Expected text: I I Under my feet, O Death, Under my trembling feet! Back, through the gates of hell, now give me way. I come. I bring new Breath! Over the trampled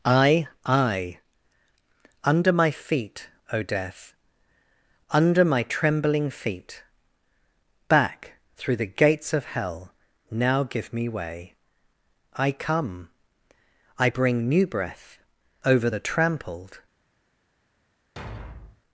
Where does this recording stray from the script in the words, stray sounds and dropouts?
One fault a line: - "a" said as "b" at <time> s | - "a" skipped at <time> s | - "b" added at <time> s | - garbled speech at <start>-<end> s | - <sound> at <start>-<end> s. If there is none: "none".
- thud at 18.2-18.8 s